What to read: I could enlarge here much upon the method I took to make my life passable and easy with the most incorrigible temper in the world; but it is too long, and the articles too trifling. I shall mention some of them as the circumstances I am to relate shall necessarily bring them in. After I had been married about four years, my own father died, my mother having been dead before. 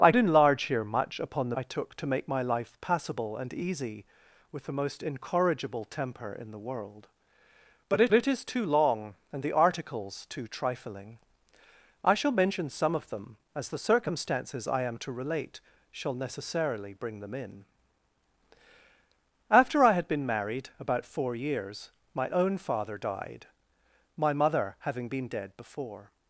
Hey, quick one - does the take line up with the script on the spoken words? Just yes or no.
no